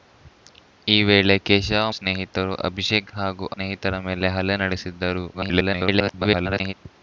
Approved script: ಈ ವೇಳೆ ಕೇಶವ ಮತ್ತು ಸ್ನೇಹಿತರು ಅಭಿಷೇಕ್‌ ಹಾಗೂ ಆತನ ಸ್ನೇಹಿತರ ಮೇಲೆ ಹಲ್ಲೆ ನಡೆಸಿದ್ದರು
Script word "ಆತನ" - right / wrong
wrong